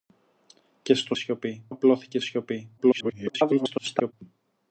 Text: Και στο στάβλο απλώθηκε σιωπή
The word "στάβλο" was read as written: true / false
false